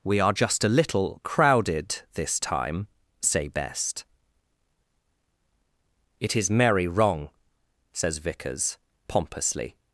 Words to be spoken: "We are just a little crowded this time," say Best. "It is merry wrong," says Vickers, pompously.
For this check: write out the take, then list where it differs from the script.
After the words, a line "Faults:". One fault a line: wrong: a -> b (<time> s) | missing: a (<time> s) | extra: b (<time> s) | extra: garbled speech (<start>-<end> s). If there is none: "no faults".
"We are just a little crowded this time," say Best. "It is merry wrong," says Vickers, pompously.
Faults:
no faults